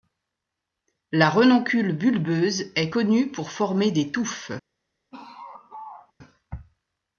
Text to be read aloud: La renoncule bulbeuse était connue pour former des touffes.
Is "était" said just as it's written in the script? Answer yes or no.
no